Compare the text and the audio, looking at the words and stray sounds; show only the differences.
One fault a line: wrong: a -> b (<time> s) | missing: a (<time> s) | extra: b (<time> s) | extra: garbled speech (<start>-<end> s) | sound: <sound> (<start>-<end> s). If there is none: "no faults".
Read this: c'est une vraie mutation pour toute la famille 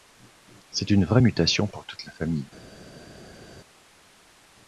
no faults